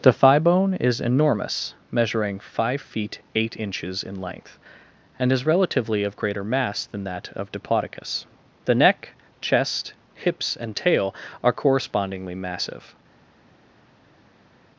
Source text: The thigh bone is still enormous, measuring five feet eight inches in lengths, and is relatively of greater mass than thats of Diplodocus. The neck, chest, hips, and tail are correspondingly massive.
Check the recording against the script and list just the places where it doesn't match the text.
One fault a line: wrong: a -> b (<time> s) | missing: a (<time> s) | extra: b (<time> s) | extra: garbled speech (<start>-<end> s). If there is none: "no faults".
missing: still (1.0 s)
wrong: lengths -> length (4.2 s)
wrong: thats -> that (7.0 s)